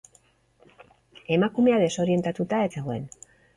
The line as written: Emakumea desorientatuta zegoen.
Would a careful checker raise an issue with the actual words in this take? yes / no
no